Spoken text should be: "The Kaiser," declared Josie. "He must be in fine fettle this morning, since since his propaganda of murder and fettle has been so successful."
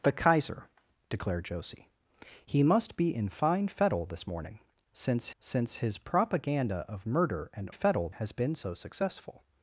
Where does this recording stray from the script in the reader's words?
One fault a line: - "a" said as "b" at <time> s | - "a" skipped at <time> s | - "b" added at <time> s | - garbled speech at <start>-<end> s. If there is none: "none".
none